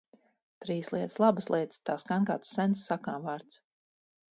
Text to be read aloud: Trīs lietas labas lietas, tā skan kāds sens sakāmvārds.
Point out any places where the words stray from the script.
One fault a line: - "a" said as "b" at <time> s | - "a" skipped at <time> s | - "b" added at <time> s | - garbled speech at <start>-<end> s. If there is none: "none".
none